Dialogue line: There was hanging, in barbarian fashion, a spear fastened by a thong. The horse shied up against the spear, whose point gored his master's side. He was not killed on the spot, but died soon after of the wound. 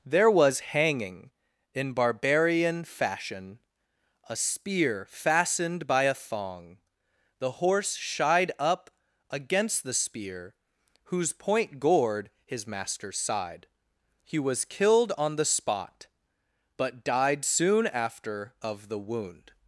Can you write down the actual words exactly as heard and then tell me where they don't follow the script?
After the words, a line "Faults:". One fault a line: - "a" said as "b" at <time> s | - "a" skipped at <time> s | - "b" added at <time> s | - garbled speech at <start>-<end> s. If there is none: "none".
There was hanging, in barbarian fashion, a spear fastened by a thong. The horse shied up against the spear, whose point gored his master's side. He was killed on the spot, but died soon after of the wound.
Faults:
- "not" skipped at 14.6 s